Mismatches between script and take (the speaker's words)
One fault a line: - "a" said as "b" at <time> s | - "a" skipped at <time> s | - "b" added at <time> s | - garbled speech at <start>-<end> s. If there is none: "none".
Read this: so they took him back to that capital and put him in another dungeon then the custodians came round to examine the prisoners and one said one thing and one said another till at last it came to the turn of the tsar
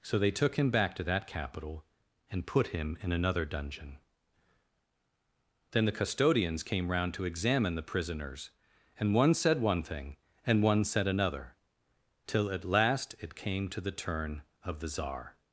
none